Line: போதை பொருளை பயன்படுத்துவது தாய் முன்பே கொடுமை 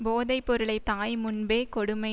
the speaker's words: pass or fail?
fail